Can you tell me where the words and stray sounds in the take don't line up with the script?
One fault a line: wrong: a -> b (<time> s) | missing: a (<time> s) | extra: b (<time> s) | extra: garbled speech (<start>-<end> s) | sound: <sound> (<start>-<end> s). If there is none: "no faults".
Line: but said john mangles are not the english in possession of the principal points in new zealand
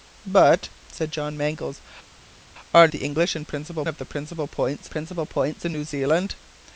missing: not (2.9 s)
wrong: possession -> principal (3.4 s)
extra: principal points (4.9 s)